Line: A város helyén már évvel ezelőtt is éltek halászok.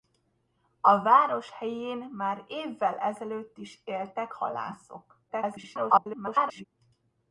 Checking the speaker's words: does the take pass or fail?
fail